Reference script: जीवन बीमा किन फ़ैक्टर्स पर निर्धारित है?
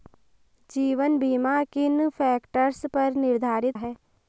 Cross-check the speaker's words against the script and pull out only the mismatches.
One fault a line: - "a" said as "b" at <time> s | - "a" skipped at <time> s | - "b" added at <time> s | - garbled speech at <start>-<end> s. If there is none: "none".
none